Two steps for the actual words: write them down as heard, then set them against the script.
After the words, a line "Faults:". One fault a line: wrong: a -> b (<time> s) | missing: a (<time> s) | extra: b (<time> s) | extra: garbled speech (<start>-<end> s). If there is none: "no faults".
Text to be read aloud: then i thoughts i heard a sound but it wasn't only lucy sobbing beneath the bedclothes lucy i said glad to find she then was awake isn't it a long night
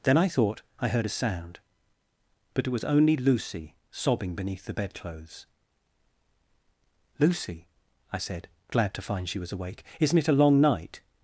then i thought i heard a sound but it was only lucy sobbing beneath the bedclothes lucy i said glad to find she was awake isn't it a long night
Faults:
wrong: thoughts -> thought (0.3 s)
wrong: wasn't -> was (2.7 s)
missing: then (9.4 s)